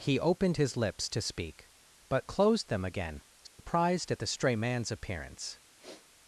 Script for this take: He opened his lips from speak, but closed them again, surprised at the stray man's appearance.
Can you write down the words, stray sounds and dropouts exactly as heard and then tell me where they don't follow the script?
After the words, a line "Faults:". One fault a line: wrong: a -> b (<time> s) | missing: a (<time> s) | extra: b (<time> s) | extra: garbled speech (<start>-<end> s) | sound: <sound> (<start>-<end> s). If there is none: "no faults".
He opened his lips to speak, but closed them again, surprised at the stray man's appearance.
Faults:
wrong: from -> to (1.1 s)
sound: dropout (3.5-3.6 s)
sound: sniff (5.8-6.1 s)